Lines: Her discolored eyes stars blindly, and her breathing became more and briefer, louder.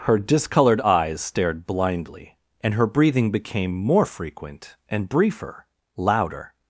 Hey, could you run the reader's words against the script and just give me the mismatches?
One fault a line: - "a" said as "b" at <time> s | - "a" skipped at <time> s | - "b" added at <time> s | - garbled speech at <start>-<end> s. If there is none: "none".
- "stars" said as "stared" at 1.2 s
- "frequent" added at 4.0 s